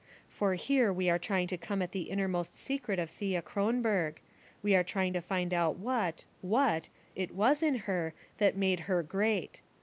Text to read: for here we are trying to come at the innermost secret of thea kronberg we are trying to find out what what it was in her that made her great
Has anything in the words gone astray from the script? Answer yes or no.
no